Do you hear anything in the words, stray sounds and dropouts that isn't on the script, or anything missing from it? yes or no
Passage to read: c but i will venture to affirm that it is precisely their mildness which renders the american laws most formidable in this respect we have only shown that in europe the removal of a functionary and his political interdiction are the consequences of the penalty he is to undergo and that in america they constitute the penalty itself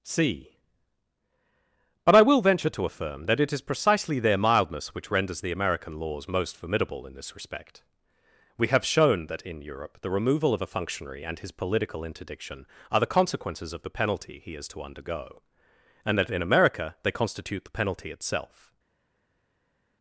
yes